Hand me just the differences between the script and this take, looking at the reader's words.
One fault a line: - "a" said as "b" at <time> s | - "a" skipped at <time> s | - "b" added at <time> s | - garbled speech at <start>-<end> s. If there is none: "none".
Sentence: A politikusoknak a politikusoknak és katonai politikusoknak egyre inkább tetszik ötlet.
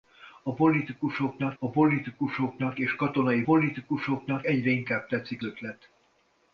none